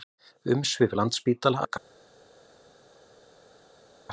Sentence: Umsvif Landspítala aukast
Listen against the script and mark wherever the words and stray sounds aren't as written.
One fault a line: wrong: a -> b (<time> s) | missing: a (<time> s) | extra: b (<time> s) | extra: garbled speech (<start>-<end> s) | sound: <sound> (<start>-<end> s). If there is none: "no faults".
no faults